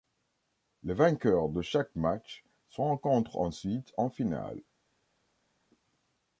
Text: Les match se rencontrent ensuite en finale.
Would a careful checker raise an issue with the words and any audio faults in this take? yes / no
yes